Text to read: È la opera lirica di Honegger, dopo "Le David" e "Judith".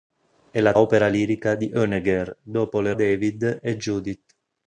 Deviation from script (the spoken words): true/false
false